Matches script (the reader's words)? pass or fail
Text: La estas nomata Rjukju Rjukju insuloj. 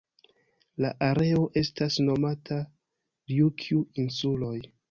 fail